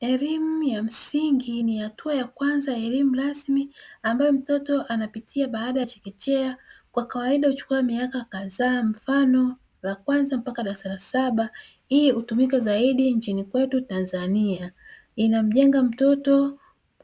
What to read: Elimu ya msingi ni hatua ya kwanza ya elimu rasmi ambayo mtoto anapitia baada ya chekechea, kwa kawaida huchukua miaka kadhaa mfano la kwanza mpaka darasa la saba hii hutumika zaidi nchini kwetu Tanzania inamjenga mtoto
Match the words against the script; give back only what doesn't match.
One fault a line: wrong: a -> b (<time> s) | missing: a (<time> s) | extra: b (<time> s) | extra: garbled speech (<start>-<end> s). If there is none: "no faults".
no faults